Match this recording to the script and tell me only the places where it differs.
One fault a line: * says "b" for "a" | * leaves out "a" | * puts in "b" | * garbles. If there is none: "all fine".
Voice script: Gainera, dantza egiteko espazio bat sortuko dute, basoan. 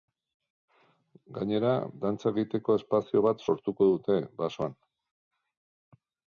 all fine